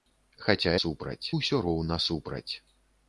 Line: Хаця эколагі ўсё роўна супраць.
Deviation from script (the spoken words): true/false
true